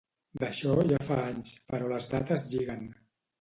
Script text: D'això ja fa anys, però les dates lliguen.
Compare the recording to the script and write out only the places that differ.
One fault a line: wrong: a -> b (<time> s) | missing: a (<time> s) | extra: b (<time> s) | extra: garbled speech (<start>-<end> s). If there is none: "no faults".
no faults